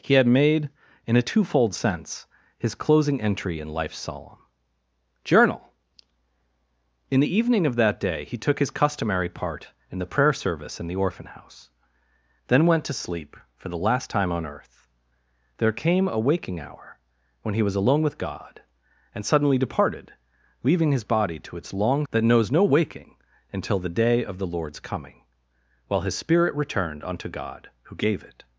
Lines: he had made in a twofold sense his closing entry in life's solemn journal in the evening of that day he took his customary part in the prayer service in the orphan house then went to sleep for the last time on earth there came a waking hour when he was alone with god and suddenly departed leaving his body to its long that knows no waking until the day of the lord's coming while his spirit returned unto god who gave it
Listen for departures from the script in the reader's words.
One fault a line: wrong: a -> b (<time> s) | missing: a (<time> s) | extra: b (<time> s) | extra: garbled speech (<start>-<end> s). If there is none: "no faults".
no faults